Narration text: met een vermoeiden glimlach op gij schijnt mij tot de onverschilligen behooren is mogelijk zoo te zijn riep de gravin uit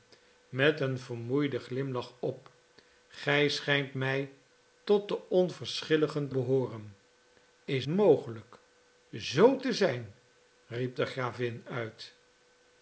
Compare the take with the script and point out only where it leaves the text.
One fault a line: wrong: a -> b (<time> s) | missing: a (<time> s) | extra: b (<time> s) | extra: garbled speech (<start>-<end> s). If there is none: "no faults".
no faults